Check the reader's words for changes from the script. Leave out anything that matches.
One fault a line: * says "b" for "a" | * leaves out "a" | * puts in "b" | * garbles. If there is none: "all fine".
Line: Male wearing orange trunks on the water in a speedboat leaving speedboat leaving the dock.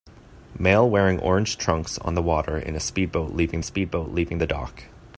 all fine